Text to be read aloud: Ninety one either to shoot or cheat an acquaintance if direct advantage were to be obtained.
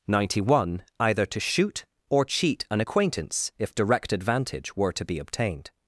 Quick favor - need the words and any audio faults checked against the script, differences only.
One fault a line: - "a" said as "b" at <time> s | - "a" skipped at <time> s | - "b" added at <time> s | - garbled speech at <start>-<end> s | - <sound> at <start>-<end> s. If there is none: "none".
none